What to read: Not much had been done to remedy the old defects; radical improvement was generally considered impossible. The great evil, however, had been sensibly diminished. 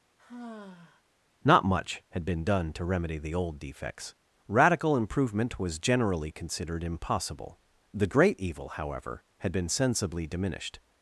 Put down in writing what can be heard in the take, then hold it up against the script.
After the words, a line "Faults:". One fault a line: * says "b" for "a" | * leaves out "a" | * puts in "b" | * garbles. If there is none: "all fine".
Not much had been done to remedy the old defects; radical improvement was generally considered impossible. The great evil, however, had been sensibly diminished.
Faults:
all fine